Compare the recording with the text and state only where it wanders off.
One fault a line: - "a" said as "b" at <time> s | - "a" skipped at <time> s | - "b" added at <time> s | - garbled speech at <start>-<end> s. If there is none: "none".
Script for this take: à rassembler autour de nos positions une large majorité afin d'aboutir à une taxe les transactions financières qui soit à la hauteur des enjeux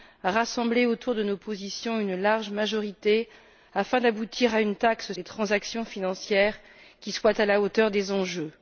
none